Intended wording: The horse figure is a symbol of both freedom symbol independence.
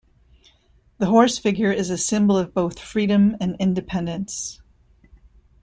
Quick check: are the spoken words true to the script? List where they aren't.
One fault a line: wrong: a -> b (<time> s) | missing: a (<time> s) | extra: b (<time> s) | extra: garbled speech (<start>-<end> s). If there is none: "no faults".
wrong: symbol -> and (3.4 s)